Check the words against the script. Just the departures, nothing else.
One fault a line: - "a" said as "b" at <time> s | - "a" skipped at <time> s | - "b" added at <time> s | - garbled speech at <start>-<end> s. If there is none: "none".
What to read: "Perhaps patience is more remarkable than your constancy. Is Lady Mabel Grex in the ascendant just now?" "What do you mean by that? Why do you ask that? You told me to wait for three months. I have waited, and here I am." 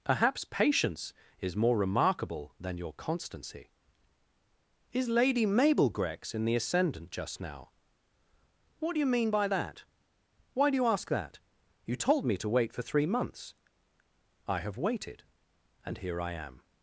none